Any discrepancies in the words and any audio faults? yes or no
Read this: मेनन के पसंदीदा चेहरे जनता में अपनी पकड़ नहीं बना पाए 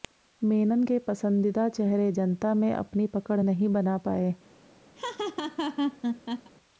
yes